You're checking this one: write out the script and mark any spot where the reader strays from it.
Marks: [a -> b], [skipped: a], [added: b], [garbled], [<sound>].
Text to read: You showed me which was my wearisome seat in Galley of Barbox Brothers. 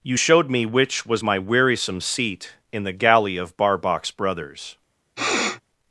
You showed me which was my wearisome seat in [added: the] Galley of Barbox Brothers. [sniff]